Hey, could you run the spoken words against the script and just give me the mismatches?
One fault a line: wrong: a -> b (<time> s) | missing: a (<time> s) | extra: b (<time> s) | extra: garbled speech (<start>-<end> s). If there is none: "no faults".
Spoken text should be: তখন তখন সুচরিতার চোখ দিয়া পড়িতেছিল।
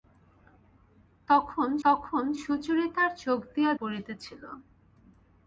no faults